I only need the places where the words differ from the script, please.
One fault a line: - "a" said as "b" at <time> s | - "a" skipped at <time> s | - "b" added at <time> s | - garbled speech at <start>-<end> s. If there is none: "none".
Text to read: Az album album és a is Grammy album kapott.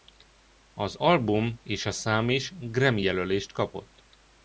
- "album" skipped at 1.6 s
- "szám" added at 1.9 s
- "album" said as "jelölést" at 3.0 s